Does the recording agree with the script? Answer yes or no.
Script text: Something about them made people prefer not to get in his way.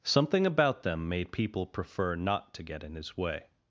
yes